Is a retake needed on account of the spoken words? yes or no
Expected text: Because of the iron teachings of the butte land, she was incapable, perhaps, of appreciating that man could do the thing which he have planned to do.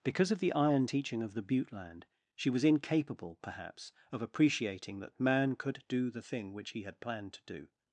yes